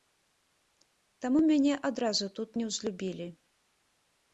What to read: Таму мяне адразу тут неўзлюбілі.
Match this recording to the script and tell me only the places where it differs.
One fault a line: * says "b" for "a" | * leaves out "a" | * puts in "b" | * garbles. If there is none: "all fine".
all fine